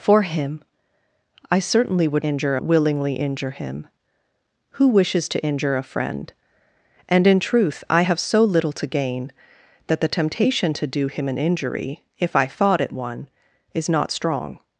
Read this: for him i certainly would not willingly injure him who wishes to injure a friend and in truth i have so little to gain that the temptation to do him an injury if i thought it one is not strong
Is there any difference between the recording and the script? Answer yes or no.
yes